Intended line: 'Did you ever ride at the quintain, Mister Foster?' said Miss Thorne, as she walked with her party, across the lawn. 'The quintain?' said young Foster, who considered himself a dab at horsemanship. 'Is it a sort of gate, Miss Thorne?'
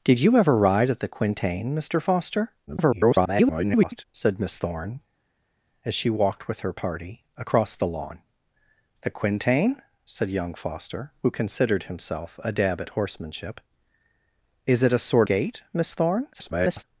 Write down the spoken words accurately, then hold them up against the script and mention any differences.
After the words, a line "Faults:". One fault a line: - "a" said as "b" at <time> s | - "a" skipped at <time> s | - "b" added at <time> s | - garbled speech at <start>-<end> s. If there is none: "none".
'Did you ever ride at the quintain, Mister Foster?' [garbled] said Miss Thorne, as she walked with her party, across the lawn. 'The quintain?' said young Foster, who considered himself a dab at horsemanship. 'Is it a sort gate, Miss Thorne?' [garbled]
Faults:
- garbled speech at 2.7-4.0 s
- "of" skipped at 15.3 s
- garbled speech at 16.3-16.8 s